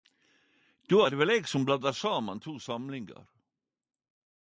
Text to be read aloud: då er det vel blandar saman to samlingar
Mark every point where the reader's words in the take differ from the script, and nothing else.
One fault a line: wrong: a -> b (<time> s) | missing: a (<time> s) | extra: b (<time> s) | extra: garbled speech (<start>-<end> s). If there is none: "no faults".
extra: eg som (1.3 s)